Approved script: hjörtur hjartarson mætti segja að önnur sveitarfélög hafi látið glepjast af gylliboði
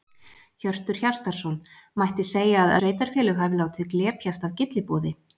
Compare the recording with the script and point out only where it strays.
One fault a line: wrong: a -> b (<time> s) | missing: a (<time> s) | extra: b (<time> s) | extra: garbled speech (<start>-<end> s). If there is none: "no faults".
missing: önnur (2.8 s)